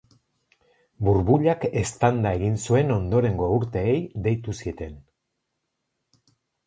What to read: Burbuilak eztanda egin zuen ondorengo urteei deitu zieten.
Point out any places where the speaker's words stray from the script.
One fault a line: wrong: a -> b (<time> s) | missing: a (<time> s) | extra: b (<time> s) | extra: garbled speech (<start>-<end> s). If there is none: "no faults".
no faults